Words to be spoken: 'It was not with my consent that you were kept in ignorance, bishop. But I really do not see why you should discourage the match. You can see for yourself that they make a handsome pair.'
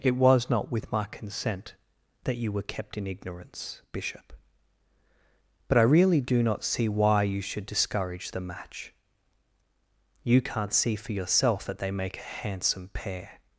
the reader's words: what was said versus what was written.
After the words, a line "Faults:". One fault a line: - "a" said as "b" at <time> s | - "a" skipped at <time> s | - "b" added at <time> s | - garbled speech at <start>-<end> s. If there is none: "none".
'It was not with my consent that you were kept in ignorance, bishop. But I really do not see why you should discourage the match. You can't see for yourself that they make a handsome pair.'
Faults:
- "can" said as "can't" at 10.4 s